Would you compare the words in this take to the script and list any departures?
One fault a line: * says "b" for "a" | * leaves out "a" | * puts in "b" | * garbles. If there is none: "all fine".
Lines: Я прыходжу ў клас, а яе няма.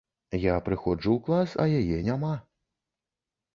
all fine